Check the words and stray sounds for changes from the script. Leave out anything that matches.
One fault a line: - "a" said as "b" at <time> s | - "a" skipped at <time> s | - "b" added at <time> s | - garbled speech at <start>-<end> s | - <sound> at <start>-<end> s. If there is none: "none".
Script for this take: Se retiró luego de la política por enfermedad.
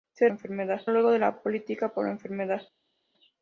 - "retiró" said as "enfermedad" at 0.3 s